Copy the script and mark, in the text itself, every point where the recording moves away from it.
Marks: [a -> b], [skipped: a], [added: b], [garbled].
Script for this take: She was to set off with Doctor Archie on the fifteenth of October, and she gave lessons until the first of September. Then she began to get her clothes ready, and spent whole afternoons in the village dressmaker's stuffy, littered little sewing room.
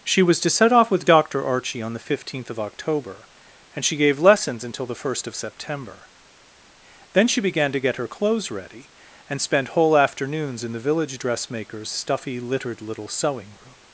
She was to set off with Doctor Archie on the fifteenth of October, and she gave lessons until the first of September. Then she began to get her clothes ready, and spent whole afternoons in the village dressmaker's stuffy, littered little sewing room.